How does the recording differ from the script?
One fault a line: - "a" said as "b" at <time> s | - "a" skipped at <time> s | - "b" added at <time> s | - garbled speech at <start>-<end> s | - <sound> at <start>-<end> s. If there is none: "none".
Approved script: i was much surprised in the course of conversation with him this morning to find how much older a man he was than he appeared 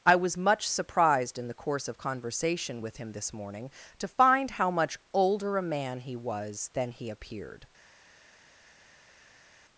none